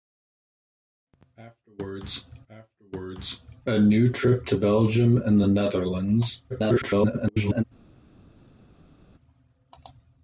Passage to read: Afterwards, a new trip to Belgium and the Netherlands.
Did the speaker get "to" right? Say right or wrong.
right